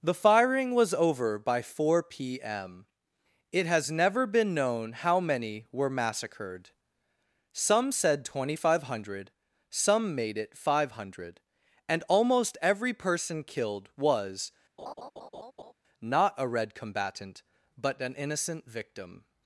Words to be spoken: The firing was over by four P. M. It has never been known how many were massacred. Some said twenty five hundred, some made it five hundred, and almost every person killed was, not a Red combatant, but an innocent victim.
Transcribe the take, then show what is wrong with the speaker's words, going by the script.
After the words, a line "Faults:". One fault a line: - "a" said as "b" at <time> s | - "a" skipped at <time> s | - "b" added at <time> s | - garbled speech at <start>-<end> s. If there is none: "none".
The firing was over by four P. M. It has never been known how many were massacred. Some said twenty five hundred, some made it five hundred, and almost every person killed was, not a Red combatant, but an innocent victim.
Faults:
none